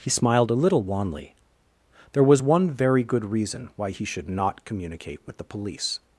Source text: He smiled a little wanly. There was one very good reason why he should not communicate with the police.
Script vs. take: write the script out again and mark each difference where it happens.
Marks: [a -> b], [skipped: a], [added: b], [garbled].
He smiled a little wanly. There was one very good reason why he should not communicate with the police.